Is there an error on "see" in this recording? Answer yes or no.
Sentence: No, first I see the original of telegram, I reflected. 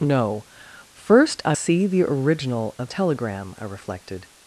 no